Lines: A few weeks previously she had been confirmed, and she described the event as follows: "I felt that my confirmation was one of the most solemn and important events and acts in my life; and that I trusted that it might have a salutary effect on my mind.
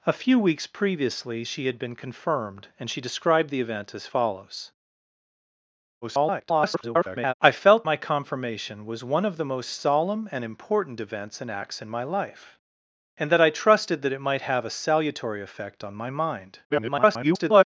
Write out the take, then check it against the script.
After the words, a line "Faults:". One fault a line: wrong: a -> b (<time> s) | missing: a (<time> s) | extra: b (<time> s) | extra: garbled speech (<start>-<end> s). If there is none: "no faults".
A few weeks previously she had been confirmed, and she described the event as follows: [garbled] "I felt my confirmation was one of the most solemn and important events and acts in my life; and that I trusted that it might have a salutary effect on my mind. [garbled]
Faults:
extra: garbled speech (6.0-7.3 s)
missing: that (7.8 s)
extra: garbled speech (16.7-17.6 s)